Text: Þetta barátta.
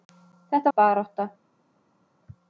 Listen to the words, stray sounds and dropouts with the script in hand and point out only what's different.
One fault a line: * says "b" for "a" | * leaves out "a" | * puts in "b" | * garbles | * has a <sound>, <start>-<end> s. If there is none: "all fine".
all fine